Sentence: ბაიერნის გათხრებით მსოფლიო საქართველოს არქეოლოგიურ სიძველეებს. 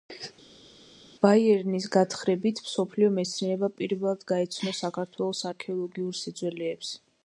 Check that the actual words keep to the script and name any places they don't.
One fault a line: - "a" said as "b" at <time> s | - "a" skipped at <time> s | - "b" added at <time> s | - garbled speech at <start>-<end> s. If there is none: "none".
- "მეცნიერება პირველად გაეცნო" added at 3.2 s